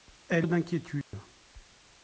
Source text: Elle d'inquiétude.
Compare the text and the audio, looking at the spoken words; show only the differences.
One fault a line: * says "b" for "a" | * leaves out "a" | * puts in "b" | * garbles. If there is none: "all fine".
all fine